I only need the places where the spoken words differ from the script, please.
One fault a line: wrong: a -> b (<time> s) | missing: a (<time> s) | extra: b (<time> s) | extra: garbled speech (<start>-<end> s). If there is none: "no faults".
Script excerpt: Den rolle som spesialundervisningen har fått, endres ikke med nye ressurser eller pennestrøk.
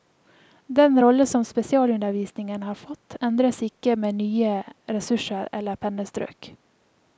no faults